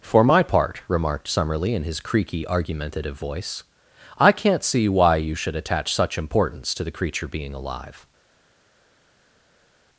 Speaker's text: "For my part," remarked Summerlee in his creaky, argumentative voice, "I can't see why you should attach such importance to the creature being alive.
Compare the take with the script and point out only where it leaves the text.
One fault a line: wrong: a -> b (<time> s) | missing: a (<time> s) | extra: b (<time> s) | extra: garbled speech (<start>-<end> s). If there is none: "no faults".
no faults